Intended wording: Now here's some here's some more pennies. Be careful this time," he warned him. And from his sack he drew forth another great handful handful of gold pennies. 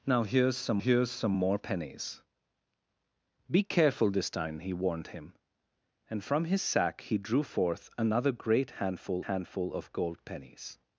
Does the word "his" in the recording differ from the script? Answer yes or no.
no